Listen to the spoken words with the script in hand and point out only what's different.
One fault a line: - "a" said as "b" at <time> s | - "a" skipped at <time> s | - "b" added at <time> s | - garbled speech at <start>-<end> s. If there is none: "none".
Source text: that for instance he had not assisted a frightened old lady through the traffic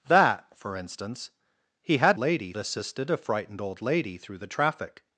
- "not" said as "lady" at 2.2 s